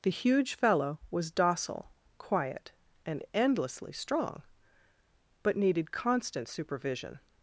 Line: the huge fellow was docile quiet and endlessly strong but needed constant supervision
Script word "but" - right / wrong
right